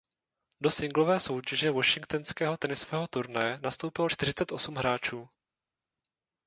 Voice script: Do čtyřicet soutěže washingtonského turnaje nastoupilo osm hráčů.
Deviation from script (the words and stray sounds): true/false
true